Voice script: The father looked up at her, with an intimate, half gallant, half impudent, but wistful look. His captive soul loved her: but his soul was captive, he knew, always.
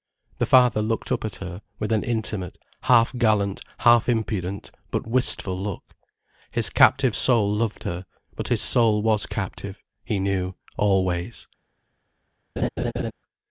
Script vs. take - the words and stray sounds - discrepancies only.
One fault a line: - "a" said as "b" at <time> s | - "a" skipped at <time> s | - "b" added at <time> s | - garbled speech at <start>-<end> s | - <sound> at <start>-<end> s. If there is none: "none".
- laugh at 12.6-13.1 s